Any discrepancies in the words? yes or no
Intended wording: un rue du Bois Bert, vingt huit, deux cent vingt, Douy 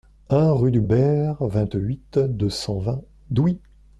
yes